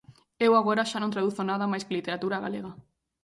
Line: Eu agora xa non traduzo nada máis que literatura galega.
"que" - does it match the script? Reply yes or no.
yes